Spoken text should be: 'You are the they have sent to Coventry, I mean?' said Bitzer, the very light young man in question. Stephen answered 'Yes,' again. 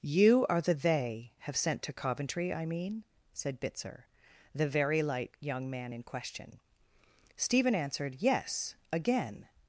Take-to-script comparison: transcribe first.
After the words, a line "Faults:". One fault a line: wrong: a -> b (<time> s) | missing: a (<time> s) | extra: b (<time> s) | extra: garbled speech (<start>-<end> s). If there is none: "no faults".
'You are the they have sent to Coventry, I mean?' said Bitzer, the very light young man in question. Stephen answered 'Yes,' again.
Faults:
no faults